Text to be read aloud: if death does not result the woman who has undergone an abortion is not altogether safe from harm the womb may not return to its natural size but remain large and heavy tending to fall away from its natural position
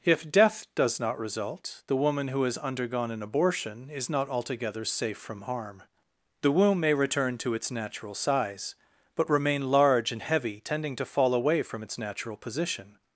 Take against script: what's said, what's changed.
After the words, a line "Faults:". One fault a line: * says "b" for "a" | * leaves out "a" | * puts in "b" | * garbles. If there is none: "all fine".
if death does not result the woman who has undergone an abortion is not altogether safe from harm the womb may return to its natural size but remain large and heavy tending to fall away from its natural position
Faults:
* leaves out "not"